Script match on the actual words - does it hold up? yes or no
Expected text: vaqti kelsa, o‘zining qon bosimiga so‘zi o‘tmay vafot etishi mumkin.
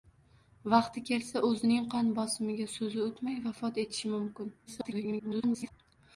no